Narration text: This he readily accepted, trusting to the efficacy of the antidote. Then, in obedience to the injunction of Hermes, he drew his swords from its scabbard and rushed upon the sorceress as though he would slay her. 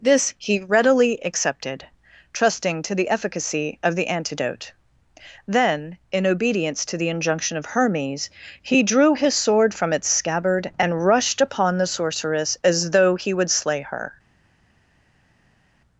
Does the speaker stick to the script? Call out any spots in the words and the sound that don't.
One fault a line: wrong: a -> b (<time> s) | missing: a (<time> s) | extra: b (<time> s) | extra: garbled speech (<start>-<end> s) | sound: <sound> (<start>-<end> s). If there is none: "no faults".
wrong: swords -> sword (9.3 s)